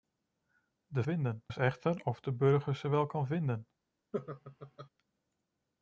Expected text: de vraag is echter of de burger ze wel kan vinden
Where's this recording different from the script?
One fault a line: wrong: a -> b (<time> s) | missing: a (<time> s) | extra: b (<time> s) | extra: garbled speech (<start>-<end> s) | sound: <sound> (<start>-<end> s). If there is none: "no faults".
wrong: vraag -> vinden (1.0 s)
sound: laugh (4.1-4.9 s)